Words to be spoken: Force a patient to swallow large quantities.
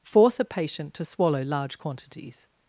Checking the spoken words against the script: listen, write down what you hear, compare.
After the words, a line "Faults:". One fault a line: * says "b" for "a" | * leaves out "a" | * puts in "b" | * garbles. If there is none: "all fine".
Force a patient to swallow large quantities.
Faults:
all fine